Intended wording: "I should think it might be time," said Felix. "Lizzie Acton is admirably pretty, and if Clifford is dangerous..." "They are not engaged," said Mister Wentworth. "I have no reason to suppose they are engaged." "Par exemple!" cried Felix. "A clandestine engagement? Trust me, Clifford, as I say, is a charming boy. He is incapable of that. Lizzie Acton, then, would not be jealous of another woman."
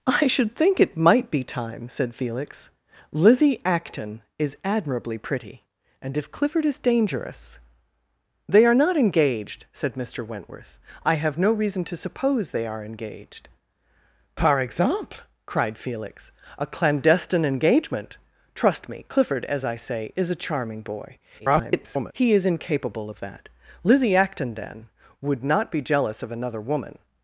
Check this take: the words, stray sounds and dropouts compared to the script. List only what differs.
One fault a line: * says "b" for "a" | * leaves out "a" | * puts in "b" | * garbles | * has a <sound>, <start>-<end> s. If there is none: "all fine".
* garbles